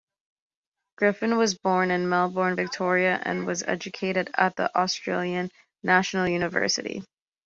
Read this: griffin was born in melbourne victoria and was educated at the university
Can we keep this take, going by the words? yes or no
no